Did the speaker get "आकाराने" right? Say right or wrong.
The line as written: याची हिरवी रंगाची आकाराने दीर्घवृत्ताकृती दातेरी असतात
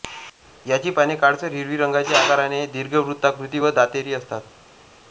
right